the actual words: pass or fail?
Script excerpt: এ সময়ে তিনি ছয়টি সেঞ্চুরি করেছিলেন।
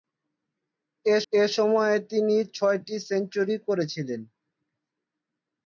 fail